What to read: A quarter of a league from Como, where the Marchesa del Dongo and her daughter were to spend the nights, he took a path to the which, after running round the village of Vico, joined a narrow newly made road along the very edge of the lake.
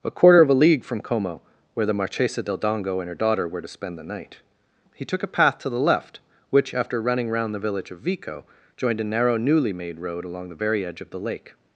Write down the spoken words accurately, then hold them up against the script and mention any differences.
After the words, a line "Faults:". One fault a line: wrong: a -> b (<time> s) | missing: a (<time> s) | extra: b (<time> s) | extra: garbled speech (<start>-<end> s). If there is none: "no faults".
A quarter of a league from Como, where the Marchesa del Dongo and her daughter were to spend the night, he took a path to the left, which, after running round the village of Vico, joined a narrow newly made road along the very edge of the lake.
Faults:
wrong: nights -> night (4.0 s)
extra: left (5.8 s)